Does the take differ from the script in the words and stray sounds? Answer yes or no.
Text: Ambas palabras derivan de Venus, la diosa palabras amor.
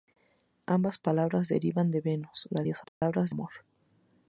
yes